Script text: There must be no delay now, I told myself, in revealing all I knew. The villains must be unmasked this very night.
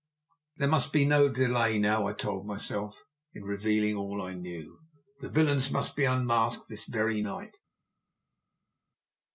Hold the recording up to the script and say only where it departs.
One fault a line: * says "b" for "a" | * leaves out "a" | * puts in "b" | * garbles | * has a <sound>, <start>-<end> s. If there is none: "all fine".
all fine